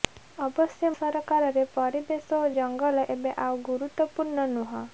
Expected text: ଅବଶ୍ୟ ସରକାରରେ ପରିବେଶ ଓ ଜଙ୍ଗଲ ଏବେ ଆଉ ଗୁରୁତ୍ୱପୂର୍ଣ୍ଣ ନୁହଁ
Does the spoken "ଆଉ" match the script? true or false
true